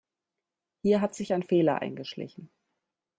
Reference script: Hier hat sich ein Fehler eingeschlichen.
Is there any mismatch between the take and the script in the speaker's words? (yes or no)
no